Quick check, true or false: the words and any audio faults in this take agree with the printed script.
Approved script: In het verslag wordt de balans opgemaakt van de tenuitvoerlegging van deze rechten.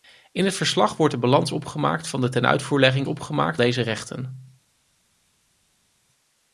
false